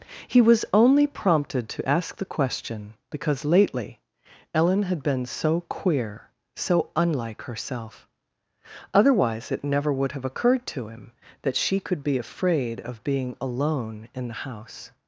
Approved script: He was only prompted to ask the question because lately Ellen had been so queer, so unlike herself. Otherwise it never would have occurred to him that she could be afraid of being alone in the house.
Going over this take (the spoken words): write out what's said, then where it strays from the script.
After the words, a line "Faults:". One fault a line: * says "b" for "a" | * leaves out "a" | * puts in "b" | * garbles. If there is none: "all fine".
He was only prompted to ask the question because lately Ellen had been so queer, so unlike herself. Otherwise it never would have occurred to him that she could be afraid of being alone in the house.
Faults:
all fine